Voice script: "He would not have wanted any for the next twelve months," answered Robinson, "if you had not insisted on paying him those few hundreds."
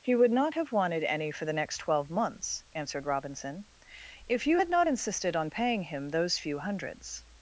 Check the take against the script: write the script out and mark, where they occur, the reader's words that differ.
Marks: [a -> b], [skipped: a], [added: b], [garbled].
"He would not have wanted any for the next twelve months," answered Robinson, "if you had not insisted on paying him those few hundreds."